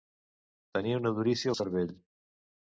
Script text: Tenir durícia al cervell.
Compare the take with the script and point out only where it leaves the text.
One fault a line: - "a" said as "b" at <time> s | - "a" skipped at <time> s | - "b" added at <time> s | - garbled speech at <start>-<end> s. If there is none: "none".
- "una" added at 1.0 s